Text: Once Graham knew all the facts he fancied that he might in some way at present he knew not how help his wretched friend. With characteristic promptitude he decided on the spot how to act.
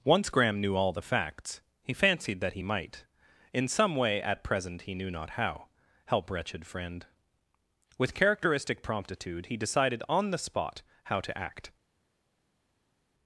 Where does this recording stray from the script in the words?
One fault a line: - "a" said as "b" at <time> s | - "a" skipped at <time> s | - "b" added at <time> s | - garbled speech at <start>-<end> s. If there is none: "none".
- "his" skipped at 6.3 s